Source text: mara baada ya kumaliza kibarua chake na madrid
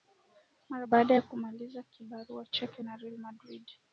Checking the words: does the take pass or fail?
fail